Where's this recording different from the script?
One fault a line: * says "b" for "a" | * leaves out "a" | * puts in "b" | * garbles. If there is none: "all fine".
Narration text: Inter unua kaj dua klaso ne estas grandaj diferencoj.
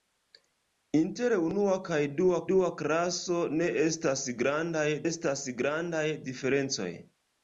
* puts in "dua"
* puts in "estas grandaj"